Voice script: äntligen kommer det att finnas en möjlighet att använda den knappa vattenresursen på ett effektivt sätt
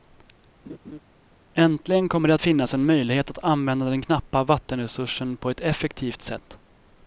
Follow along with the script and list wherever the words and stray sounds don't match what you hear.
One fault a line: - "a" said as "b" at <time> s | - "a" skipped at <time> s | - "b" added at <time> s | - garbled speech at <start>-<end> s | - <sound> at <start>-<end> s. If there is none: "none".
- laugh at 0.7-1.0 s